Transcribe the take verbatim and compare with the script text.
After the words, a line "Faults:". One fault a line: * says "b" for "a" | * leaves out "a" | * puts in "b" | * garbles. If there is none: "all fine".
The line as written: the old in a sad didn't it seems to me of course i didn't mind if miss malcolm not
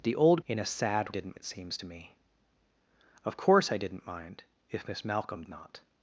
the old in a sad didn't it seems to me of course i didn't mind if miss malcolm not
Faults:
all fine